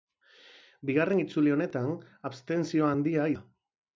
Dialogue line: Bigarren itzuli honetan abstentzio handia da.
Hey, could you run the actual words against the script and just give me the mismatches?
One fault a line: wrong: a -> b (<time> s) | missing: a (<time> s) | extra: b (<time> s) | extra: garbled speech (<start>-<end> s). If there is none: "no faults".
no faults